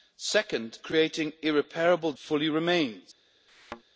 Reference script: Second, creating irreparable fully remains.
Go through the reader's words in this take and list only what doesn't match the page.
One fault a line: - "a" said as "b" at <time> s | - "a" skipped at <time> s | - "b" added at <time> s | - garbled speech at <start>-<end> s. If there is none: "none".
none